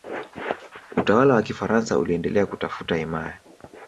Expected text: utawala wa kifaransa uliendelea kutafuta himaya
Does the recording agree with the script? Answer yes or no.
yes